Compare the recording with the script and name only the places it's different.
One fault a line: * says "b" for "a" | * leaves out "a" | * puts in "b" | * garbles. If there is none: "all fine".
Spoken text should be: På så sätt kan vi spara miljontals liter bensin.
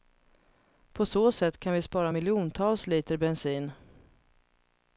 all fine